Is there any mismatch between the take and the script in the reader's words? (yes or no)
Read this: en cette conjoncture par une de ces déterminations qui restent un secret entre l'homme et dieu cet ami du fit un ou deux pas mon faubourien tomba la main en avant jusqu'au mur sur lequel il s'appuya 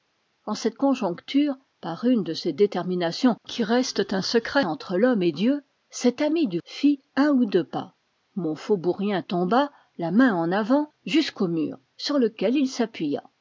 no